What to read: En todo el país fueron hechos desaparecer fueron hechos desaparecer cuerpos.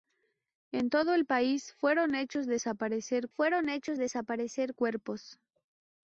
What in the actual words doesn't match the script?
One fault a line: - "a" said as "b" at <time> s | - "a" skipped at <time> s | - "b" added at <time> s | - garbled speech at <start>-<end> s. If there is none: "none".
none